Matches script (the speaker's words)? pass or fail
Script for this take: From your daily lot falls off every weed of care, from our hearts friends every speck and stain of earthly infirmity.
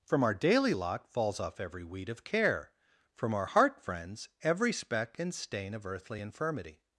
fail